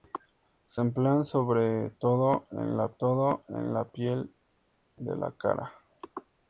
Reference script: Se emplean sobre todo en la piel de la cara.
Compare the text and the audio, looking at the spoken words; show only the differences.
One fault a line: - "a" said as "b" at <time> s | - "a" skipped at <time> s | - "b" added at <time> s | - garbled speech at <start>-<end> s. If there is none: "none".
- "todo en la" added at 3.0 s